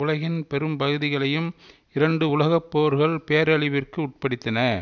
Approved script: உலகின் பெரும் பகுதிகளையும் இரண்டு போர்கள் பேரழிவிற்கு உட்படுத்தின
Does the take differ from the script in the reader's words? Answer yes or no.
yes